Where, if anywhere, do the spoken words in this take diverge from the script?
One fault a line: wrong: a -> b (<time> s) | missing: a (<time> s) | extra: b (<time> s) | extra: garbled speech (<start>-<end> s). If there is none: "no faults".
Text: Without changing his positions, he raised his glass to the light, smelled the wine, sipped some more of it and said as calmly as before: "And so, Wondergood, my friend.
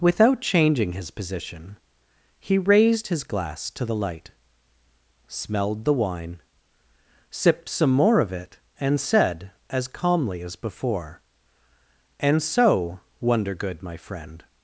wrong: positions -> position (1.1 s)